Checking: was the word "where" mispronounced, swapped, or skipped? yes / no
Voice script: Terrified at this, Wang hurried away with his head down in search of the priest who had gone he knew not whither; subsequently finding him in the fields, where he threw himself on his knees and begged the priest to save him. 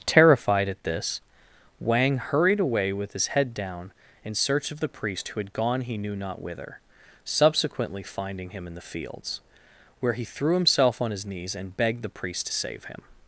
no